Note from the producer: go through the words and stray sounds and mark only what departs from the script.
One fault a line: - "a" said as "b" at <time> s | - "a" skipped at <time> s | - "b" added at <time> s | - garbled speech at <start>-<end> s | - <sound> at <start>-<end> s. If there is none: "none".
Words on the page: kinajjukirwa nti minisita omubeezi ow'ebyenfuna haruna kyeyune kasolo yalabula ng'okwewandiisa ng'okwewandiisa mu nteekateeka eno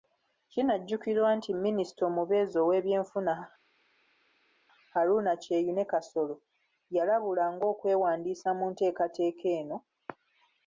- "ng'okwewandiisa" skipped at 8.5 s